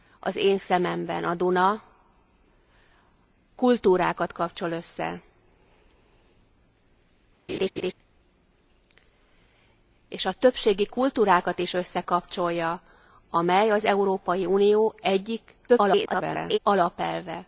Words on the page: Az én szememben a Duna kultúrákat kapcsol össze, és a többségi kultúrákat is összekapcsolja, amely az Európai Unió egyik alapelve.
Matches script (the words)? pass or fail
fail